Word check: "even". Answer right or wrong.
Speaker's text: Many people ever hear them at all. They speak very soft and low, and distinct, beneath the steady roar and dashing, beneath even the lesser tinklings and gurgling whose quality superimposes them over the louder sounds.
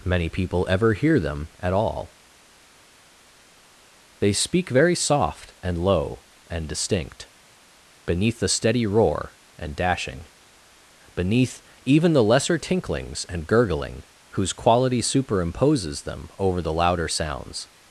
right